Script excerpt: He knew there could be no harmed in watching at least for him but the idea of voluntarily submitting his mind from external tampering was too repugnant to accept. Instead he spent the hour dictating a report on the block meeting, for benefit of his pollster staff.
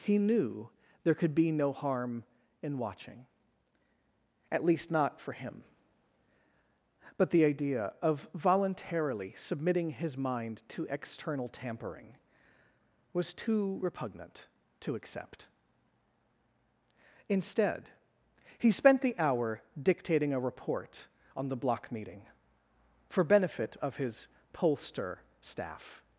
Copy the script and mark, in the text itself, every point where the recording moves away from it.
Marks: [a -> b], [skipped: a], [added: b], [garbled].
He knew there could be no [harmed -> harm] in watching at least [added: not] for him but the idea of voluntarily submitting his mind [from -> to] external tampering was too repugnant to accept. Instead he spent the hour dictating a report on the block meeting, for benefit of his pollster staff.